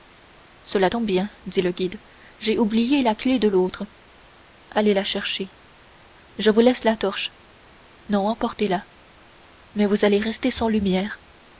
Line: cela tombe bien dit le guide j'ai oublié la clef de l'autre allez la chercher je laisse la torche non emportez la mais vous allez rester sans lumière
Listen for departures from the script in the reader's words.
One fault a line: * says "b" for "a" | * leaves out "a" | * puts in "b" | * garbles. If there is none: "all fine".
* puts in "vous"